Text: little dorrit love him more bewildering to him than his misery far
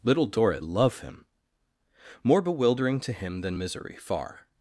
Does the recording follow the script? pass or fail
fail